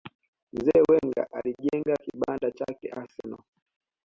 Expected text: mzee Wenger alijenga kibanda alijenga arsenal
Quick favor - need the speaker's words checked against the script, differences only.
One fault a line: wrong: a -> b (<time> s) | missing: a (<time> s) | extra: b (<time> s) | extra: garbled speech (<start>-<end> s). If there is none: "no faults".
wrong: alijenga -> chake (2.5 s)